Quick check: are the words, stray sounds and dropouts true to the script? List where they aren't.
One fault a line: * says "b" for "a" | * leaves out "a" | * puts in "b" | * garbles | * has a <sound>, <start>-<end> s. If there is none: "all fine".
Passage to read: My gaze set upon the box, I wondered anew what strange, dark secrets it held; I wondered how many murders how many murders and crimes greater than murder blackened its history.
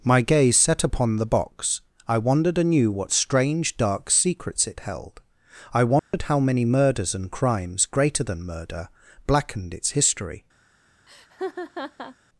* has a dropout, 6.0-6.1 s
* leaves out "how many murders"
* has a laugh, 11.1-12.2 s